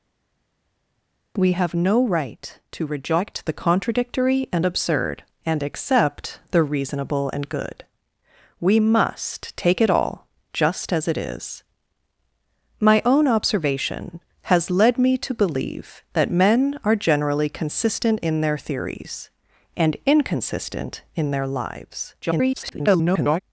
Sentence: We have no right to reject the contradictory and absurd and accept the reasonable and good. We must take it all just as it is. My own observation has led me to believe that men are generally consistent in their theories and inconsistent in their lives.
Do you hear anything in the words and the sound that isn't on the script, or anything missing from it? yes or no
yes